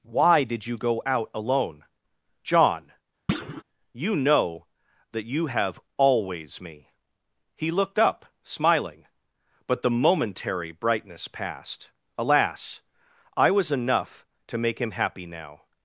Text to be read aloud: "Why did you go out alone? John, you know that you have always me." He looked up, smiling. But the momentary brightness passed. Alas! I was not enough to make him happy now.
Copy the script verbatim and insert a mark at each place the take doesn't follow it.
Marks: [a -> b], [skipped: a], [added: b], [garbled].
"Why did you go out alone? John, you know that you have always me." He looked up, smiling. But the momentary brightness passed. Alas! I was [skipped: not] enough to make him happy now.